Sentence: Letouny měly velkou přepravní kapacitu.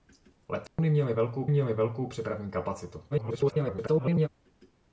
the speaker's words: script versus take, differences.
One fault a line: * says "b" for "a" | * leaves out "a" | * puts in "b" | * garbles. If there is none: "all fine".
* puts in "měly velkou"
* garbles